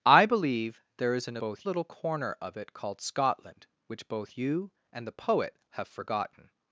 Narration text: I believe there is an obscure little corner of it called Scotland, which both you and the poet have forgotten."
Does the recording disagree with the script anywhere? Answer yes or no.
yes